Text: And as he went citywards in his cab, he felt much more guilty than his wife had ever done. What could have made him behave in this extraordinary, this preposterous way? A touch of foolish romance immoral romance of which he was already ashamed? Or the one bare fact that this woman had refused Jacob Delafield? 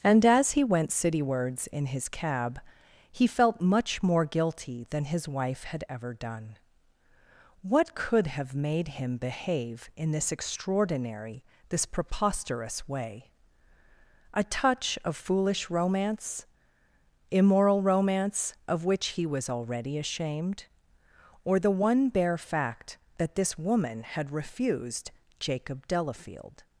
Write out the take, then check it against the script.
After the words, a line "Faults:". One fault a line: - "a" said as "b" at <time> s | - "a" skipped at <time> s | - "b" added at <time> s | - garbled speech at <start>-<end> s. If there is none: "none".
And as he went citywards in his cab, he felt much more guilty than his wife had ever done. What could have made him behave in this extraordinary, this preposterous way? A touch of foolish romance immoral romance of which he was already ashamed? Or the one bare fact that this woman had refused Jacob Delafield?
Faults:
none